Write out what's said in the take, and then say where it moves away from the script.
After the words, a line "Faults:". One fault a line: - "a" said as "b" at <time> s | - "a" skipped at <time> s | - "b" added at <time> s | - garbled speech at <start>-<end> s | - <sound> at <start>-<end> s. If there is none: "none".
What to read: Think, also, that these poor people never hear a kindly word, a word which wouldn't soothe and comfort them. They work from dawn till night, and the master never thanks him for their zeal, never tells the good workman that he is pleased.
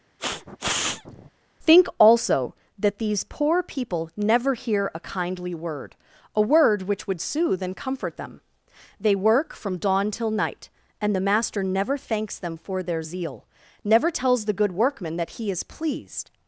Think, also, that these poor people never hear a kindly word, a word which would soothe and comfort them. They work from dawn till night, and the master never thanks them for their zeal, never tells the good workman that he is pleased.
Faults:
- sniff at 0.2-1.3 s
- "wouldn't" said as "would" at 7.1 s
- "him" said as "them" at 12.4 s